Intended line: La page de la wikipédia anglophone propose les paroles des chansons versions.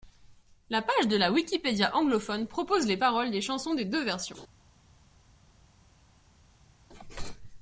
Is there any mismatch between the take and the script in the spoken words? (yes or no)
yes